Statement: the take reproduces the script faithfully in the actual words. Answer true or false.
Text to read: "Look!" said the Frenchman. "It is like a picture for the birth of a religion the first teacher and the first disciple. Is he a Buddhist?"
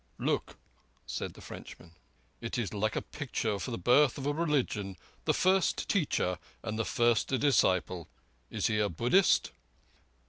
true